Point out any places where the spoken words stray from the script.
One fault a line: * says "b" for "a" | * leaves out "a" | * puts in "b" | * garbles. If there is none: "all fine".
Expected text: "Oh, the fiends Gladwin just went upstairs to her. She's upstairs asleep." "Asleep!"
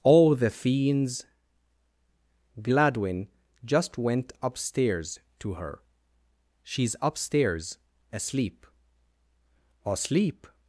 all fine